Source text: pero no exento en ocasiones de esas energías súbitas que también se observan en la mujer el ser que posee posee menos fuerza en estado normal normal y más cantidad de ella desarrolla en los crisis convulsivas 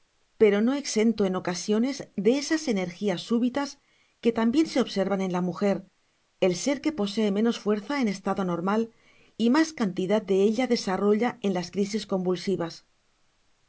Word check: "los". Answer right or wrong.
wrong